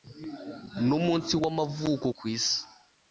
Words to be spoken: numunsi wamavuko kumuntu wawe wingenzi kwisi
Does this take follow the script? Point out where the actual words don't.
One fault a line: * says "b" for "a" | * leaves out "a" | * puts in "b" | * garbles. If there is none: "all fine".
* leaves out "kumuntu wawe wingenzi"